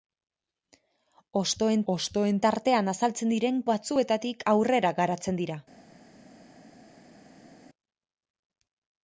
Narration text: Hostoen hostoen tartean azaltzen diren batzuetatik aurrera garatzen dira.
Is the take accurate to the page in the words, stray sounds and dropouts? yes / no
yes